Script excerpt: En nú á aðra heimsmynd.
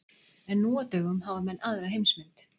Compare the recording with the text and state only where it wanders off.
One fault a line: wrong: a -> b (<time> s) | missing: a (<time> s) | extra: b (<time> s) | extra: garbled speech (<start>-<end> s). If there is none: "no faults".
extra: dögum hafa menn (0.9 s)